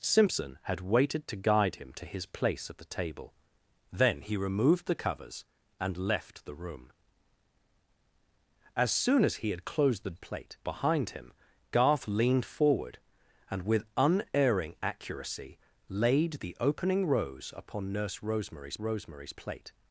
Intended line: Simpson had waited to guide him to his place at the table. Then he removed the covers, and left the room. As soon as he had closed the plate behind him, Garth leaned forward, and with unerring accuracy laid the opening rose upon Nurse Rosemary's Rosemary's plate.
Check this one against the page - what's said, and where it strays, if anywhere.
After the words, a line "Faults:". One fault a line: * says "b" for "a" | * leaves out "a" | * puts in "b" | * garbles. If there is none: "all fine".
Simpson had waited to guide him to his place at the table. Then he removed the covers, and left the room. As soon as he had closed the plate behind him, Garth leaned forward, and with unerring accuracy laid the opening rose upon Nurse Rosemary's Rosemary's plate.
Faults:
all fine